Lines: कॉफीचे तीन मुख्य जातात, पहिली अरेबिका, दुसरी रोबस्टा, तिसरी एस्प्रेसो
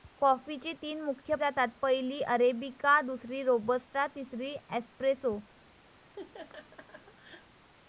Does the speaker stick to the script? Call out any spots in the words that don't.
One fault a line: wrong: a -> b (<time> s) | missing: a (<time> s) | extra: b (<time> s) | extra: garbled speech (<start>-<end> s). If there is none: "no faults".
no faults